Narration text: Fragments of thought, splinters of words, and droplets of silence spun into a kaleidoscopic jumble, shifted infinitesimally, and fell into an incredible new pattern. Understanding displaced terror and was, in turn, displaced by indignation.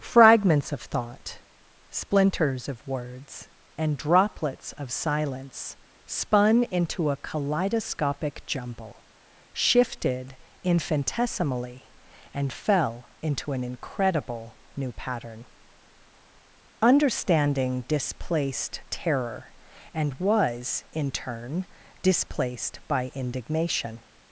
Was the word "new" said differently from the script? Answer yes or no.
no